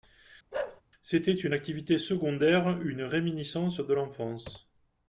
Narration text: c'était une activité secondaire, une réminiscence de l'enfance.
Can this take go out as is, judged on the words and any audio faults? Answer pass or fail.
fail